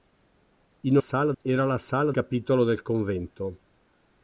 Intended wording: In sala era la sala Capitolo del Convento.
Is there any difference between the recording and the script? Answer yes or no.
no